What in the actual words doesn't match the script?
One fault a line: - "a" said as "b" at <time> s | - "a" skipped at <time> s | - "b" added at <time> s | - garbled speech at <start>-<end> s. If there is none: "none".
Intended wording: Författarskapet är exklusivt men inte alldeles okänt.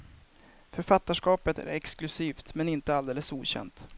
none